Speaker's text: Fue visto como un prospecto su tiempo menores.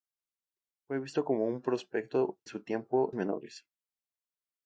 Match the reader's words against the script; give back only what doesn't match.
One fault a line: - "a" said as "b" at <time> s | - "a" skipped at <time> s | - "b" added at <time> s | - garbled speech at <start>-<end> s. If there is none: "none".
none